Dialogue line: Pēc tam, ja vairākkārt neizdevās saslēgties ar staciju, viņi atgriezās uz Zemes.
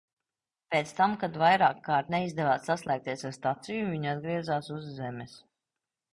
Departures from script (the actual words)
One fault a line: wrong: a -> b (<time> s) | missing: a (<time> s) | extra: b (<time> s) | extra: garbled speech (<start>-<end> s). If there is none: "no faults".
wrong: ja -> kad (1.2 s)